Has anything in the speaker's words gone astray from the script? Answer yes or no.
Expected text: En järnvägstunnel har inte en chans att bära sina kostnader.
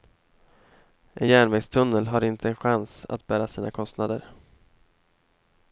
no